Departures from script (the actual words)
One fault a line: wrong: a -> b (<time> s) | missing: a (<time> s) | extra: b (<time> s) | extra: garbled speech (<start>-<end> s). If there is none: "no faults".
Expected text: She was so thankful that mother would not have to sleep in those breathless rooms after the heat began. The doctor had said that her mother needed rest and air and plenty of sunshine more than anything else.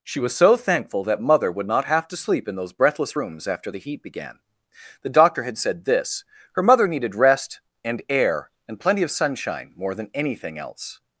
wrong: that -> this (5.8 s)